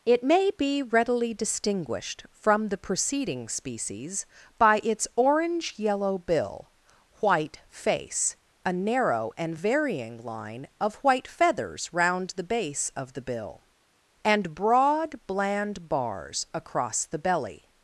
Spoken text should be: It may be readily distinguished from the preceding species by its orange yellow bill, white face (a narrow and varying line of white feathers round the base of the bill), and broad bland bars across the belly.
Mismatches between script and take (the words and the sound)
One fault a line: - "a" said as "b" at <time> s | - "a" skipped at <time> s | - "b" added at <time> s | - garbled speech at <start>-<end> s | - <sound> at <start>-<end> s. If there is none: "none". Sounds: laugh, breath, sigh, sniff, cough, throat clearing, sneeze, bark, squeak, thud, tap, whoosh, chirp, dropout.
none